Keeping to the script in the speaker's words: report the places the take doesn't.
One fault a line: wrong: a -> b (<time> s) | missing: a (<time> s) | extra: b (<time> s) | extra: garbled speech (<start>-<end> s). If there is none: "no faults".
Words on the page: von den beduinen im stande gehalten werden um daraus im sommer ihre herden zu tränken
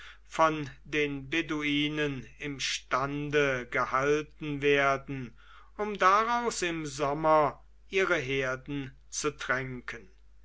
no faults